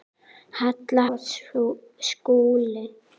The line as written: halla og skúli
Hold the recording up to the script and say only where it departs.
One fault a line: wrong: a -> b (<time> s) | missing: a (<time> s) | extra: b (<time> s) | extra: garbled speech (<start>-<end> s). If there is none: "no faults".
no faults